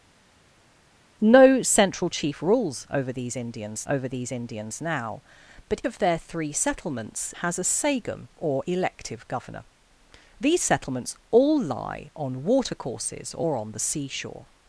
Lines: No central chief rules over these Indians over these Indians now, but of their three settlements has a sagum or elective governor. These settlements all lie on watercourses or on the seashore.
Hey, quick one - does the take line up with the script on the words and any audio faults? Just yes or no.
yes